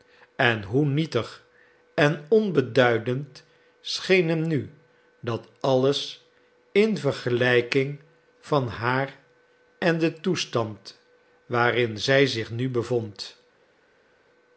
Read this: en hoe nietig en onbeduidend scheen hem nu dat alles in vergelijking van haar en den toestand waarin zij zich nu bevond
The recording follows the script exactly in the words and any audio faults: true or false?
true